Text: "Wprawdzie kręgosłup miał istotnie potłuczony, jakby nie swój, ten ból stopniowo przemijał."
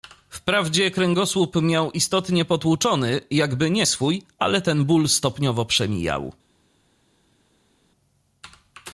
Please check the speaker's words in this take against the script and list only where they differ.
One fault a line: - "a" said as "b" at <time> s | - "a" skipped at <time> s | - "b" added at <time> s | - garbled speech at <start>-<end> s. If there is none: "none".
- "ale" added at 4.4 s